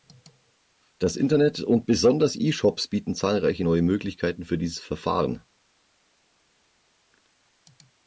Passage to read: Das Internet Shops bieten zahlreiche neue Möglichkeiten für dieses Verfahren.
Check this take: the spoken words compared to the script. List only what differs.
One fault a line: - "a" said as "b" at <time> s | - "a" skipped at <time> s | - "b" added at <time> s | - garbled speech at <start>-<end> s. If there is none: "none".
- "und besonders E" added at 1.6 s